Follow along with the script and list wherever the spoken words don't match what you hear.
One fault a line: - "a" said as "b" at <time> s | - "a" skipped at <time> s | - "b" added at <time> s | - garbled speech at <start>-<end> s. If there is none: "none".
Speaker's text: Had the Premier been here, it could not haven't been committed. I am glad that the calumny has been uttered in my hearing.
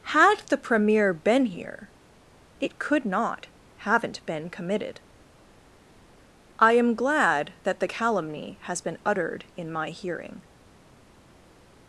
none